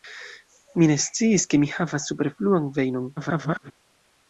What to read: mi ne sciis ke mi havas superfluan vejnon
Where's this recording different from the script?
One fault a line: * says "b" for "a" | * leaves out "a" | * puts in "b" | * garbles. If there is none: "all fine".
* garbles